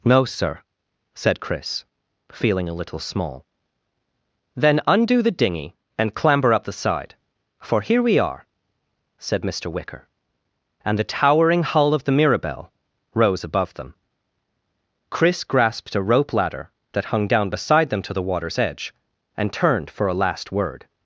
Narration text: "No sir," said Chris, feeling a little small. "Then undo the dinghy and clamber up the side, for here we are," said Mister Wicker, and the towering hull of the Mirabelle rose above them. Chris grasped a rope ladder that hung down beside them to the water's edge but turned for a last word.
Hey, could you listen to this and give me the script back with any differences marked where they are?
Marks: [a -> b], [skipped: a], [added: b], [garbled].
"No sir," said Chris, feeling a little small. "Then undo the dinghy and clamber up the side, for here we are," said Mister Wicker, and the towering hull of the Mirabelle rose above them. Chris grasped a rope ladder that hung down beside them to the water's edge [but -> and] turned for a last word.